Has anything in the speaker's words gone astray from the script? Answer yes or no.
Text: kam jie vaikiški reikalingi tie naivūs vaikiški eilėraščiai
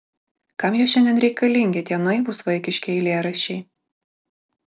yes